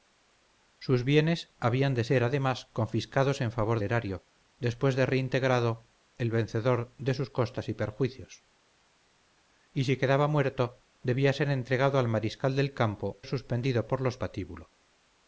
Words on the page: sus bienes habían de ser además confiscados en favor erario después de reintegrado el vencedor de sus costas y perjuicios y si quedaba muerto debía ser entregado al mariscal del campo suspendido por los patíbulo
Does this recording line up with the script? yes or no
yes